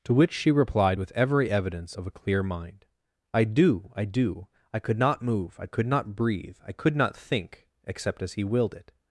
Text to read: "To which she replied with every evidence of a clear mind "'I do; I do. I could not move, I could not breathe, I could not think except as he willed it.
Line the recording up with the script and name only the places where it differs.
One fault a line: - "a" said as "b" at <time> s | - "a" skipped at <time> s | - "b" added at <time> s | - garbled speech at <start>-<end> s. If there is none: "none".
none